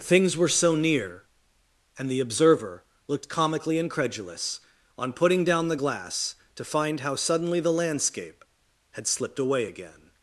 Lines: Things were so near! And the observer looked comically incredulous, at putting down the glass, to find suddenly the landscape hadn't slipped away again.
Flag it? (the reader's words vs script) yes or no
yes